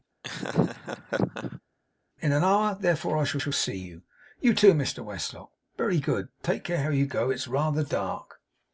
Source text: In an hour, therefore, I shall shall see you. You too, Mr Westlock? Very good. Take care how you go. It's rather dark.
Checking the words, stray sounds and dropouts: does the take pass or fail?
fail